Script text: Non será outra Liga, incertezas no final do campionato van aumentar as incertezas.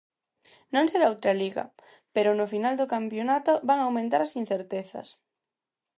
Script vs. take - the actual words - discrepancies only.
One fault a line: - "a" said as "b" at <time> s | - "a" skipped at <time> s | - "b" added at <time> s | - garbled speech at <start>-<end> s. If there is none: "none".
- "incertezas" said as "pero" at 2.1 s